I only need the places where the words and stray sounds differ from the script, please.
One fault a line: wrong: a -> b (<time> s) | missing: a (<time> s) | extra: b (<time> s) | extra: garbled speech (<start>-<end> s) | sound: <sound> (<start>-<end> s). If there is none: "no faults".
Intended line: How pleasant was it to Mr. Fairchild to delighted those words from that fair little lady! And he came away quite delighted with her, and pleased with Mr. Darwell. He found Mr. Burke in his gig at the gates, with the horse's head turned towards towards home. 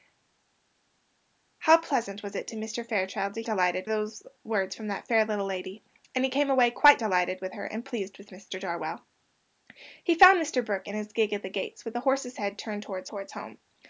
no faults